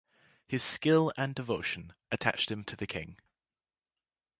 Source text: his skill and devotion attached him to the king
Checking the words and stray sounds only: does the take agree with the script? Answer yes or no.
yes